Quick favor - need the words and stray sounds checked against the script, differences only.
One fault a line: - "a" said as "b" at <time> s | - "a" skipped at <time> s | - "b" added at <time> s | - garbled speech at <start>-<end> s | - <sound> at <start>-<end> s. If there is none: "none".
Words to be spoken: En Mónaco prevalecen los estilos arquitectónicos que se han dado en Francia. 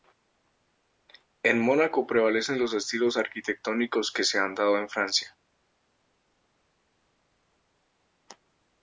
none